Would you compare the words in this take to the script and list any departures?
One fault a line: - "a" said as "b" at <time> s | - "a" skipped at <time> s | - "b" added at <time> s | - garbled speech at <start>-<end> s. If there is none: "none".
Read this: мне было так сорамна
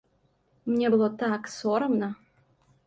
none